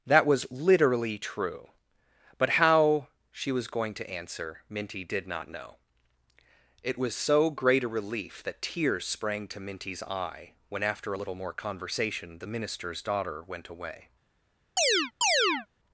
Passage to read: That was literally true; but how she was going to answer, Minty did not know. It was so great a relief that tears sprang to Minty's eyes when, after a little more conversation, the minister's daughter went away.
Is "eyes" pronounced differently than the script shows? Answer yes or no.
yes